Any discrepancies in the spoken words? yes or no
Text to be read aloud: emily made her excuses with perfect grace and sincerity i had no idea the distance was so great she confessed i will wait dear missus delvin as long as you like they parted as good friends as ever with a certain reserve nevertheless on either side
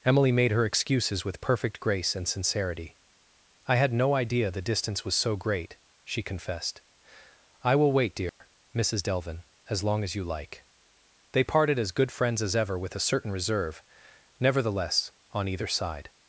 no